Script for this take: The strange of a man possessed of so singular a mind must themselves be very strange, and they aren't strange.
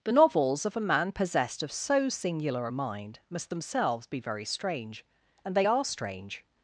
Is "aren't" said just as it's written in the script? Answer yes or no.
no